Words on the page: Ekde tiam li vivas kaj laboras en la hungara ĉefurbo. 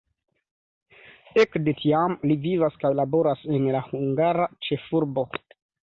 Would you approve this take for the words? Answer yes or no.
yes